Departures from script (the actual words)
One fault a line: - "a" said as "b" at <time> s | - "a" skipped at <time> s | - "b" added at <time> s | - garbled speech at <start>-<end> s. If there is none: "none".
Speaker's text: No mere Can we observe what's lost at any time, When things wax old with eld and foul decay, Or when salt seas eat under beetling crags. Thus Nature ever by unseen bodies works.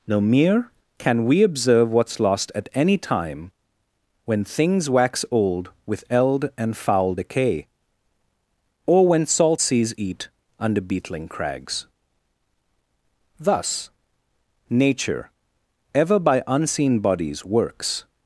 none